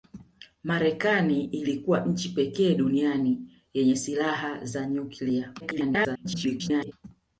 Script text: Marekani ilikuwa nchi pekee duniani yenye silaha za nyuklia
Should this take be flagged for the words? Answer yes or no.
yes